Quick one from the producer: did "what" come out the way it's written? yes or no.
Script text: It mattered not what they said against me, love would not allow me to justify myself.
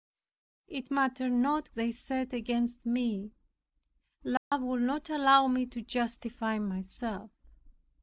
no